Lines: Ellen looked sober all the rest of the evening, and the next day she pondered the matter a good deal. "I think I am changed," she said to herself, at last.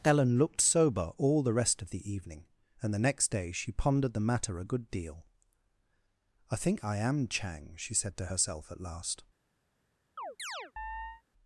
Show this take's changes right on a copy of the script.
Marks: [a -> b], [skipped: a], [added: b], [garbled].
Ellen looked sober all the rest of the evening, and the next day she pondered the matter a good deal. "I think I am [changed," -> chang] she said to herself, at last.